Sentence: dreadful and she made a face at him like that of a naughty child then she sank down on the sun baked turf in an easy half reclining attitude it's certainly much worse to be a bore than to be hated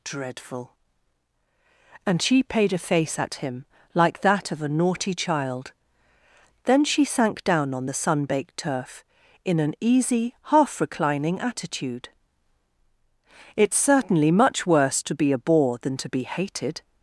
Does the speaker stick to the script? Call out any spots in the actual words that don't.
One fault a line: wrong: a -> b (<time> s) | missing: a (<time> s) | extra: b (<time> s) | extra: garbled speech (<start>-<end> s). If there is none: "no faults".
wrong: made -> paid (2.4 s)